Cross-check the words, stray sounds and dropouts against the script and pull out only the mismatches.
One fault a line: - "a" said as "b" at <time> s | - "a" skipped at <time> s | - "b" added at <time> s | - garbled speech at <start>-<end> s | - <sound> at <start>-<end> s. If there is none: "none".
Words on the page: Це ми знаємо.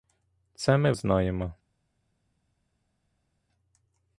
none